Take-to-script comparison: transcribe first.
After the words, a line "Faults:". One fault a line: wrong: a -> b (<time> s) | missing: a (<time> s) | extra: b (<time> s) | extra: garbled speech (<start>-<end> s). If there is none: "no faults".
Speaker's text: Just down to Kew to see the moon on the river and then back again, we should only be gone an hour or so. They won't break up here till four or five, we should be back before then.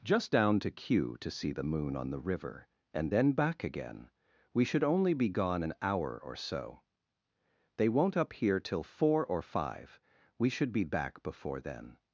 Just down to Kew to see the moon on the river and then back again, we should only be gone an hour or so. They won't up here till four or five, we should be back before then.
Faults:
missing: break (8.2 s)